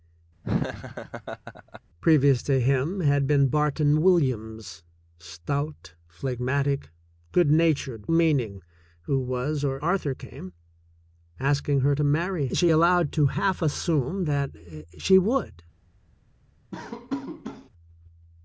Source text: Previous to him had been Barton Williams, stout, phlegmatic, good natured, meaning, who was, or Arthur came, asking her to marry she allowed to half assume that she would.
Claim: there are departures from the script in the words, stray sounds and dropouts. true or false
true